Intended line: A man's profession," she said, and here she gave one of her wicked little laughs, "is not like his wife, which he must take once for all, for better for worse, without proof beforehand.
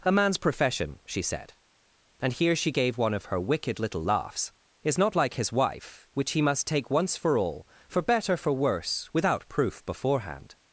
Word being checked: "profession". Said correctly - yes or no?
yes